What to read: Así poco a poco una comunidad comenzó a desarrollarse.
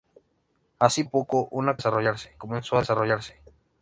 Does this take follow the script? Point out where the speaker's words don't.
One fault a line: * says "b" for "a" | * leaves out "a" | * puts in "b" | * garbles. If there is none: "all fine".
* leaves out "poco"
* says "desarrollarse" for "comunidad"